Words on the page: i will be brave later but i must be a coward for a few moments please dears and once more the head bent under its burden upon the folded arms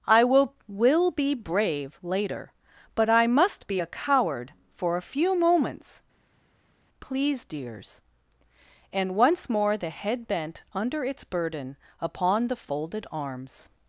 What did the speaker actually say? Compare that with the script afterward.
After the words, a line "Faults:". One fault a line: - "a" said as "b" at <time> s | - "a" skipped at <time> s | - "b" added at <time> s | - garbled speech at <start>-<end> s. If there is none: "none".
i will will be brave later but i must be a coward for a few moments please dears and once more the head bent under its burden upon the folded arms
Faults:
- "will" added at 0.7 s